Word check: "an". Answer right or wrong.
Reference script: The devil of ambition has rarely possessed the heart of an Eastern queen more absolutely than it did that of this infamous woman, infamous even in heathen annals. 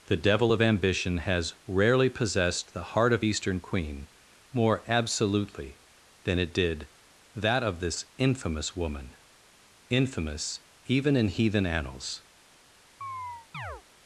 wrong